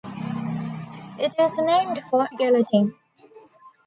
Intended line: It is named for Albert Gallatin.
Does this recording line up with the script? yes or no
no